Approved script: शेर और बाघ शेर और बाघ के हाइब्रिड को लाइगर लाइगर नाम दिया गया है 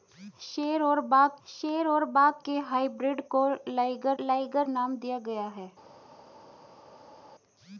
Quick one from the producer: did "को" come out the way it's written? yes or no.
yes